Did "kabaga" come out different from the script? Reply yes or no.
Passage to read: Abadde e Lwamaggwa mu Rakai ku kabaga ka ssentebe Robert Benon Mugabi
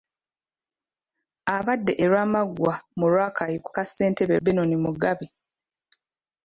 yes